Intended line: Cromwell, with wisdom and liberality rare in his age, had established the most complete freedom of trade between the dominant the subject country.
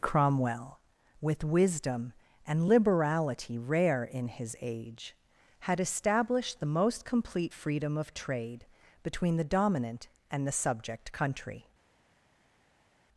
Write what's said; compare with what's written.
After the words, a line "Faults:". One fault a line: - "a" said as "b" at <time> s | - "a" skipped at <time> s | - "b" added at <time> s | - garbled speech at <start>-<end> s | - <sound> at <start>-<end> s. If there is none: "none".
Cromwell, with wisdom and liberality rare in his age, had established the most complete freedom of trade between the dominant and the subject country.
Faults:
- "and" added at 10.3 s